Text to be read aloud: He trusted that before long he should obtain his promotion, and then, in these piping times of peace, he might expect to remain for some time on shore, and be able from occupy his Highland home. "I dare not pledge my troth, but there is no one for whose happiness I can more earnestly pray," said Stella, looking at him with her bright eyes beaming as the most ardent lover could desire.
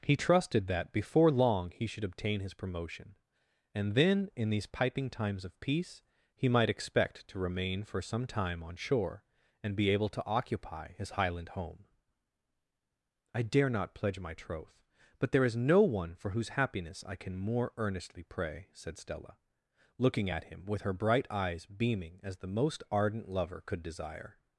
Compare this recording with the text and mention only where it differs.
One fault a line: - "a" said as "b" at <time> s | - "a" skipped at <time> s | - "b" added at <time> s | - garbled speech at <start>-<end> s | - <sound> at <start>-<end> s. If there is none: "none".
- "from" said as "to" at 10.1 s